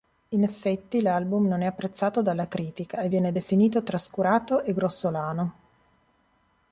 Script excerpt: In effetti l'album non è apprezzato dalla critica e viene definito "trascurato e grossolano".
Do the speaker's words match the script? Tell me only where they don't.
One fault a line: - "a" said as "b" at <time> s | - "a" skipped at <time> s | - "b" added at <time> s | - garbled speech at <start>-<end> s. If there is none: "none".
none